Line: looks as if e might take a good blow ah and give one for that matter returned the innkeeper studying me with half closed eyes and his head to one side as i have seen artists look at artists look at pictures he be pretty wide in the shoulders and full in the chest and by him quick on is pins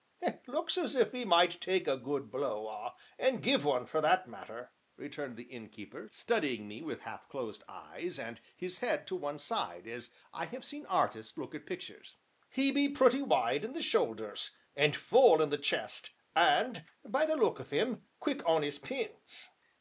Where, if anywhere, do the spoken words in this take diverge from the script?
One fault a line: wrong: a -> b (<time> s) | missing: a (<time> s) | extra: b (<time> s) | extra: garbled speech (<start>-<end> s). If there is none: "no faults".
missing: artists look at (11.7 s)
extra: the look of (17.3 s)